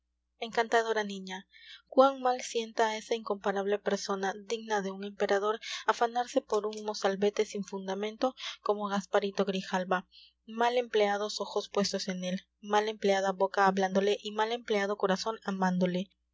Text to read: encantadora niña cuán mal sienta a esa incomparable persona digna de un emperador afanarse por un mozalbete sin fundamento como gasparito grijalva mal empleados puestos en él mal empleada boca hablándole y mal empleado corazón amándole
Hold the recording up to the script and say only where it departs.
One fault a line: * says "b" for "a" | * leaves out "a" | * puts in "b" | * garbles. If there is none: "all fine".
* puts in "ojos"